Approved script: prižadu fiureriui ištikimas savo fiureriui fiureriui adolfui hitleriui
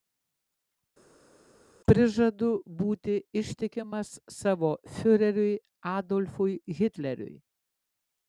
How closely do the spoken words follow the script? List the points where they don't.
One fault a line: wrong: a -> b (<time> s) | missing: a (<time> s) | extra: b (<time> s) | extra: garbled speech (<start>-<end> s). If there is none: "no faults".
wrong: fiureriui -> būti (2.8 s)
missing: fiureriui (5.5 s)